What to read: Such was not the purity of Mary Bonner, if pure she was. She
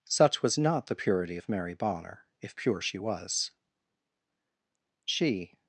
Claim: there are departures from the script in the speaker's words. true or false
false